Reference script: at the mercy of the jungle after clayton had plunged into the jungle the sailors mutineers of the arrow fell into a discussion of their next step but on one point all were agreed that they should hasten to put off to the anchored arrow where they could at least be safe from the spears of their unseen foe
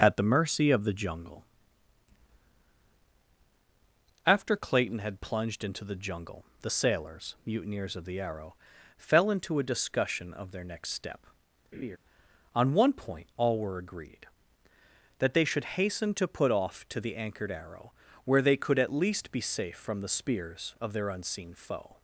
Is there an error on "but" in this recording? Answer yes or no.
yes